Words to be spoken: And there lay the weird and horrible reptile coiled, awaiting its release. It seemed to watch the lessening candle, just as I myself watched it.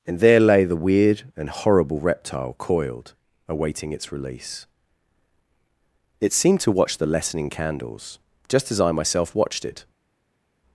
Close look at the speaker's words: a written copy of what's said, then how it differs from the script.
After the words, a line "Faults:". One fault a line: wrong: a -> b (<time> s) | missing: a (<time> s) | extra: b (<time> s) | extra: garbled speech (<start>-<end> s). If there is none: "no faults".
And there lay the weird and horrible reptile coiled, awaiting its release. It seemed to watch the lessening candles, just as I myself watched it.
Faults:
wrong: candle -> candles (7.5 s)